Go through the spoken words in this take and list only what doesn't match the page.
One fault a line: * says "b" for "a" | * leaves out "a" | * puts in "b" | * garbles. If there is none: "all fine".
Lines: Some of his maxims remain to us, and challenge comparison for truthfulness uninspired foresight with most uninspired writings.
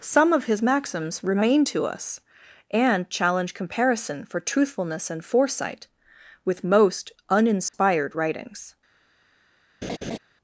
* says "and" for "uninspired"